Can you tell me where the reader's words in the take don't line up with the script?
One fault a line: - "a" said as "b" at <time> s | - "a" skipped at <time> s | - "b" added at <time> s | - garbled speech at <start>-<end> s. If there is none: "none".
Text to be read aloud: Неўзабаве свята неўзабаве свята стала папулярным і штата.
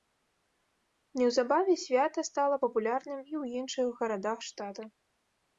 - "неўзабаве свята" skipped at 2.2 s
- "ў іншых гарадах" added at 3.4 s